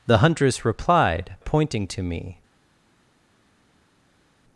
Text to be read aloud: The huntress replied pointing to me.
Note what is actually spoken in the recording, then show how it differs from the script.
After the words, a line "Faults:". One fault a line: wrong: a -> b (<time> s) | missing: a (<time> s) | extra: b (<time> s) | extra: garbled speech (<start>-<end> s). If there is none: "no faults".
The huntress replied pointing to me.
Faults:
no faults